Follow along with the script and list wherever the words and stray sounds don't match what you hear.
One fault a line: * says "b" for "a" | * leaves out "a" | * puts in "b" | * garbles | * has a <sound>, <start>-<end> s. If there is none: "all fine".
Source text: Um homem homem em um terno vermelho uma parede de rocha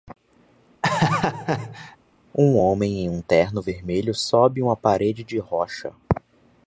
* has a laugh, 0.8-2.0 s
* leaves out "homem"
* puts in "sobe"